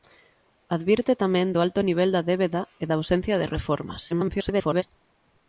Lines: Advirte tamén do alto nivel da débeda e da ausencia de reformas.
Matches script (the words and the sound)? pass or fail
fail